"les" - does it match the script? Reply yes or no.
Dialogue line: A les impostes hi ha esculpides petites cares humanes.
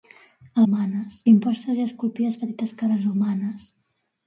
no